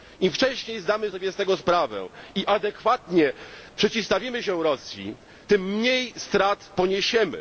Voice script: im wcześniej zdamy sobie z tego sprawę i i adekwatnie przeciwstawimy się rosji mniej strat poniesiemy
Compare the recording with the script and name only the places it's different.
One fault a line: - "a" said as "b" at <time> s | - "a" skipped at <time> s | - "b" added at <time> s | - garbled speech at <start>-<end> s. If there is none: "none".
- "i" skipped at 2.5 s
- "tym" added at 5.5 s